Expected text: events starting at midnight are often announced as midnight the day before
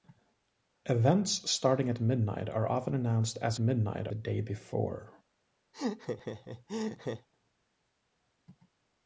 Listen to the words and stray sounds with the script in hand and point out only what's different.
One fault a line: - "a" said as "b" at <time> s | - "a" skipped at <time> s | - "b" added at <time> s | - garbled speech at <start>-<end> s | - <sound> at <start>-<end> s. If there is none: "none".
- laugh at 5.7-7.3 s